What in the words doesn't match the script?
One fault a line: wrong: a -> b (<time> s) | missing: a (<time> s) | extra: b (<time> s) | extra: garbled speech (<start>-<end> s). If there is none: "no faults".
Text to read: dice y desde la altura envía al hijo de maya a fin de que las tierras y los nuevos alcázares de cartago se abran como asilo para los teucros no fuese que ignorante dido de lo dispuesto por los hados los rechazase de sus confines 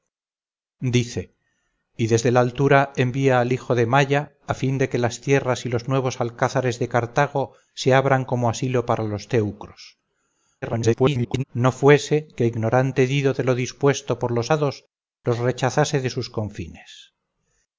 extra: garbled speech (10.6-11.4 s)